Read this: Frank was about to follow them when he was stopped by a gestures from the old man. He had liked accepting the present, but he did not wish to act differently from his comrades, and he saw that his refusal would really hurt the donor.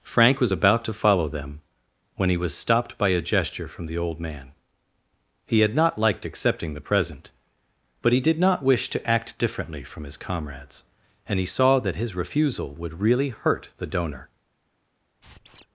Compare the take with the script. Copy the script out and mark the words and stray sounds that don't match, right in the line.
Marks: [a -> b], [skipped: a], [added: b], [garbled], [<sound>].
Frank was about to follow them when he was stopped by a [gestures -> gesture] from the old man. He had [added: not] liked accepting the present, but he did not wish to act differently from his comrades, and he saw that his refusal would really hurt the donor. [squeak]